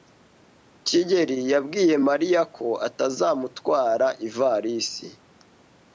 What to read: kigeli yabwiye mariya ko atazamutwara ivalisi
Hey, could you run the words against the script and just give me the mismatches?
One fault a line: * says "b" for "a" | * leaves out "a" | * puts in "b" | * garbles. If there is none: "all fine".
all fine